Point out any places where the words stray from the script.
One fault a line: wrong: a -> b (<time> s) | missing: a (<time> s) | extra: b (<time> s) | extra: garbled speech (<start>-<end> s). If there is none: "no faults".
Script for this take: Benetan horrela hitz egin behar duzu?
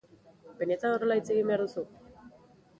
no faults